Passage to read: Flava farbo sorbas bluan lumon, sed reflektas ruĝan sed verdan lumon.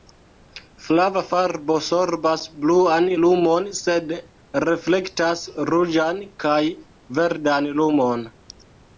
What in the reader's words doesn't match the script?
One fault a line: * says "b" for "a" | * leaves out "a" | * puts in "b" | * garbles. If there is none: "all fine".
* says "kaj" for "sed"